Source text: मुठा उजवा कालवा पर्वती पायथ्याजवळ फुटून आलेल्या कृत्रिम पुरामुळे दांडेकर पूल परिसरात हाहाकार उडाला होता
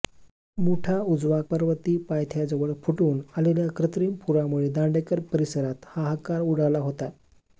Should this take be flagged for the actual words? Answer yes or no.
yes